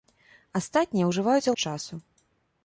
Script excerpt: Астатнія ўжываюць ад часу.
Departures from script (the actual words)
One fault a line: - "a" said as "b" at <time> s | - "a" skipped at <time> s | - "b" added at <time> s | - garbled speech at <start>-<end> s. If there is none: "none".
none